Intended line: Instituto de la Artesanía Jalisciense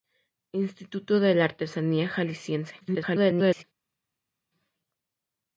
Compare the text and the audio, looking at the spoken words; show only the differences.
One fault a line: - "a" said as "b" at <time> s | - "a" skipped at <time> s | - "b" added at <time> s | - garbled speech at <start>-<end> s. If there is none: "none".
- garbled speech at 2.8-3.6 s